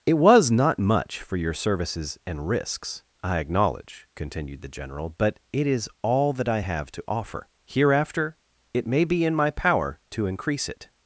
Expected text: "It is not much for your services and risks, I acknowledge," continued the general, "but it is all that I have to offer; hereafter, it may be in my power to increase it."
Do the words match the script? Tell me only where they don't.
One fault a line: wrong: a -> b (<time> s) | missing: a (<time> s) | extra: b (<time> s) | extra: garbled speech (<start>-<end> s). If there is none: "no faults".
wrong: is -> was (0.1 s)